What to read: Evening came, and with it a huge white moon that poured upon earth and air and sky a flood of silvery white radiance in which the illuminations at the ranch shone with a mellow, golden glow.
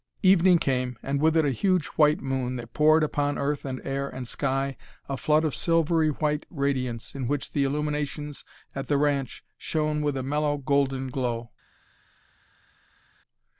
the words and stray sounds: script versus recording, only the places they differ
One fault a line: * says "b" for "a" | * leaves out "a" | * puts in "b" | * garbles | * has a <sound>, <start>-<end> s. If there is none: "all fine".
all fine